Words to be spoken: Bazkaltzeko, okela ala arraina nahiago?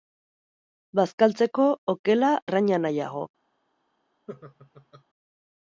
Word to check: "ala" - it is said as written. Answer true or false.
false